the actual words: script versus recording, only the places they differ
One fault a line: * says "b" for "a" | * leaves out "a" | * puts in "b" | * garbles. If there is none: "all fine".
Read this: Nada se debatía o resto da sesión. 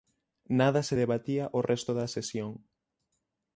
all fine